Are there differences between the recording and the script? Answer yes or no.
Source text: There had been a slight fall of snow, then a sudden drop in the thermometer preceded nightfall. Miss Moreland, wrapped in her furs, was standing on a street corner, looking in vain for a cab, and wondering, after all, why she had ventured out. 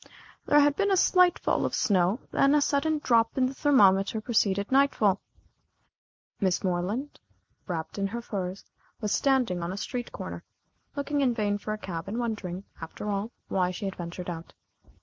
no